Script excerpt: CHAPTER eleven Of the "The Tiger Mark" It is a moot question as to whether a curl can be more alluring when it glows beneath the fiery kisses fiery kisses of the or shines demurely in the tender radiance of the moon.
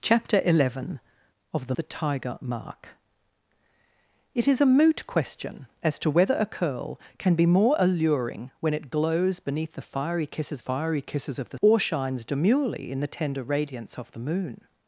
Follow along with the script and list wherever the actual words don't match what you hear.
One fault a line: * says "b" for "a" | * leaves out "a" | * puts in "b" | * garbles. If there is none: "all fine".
all fine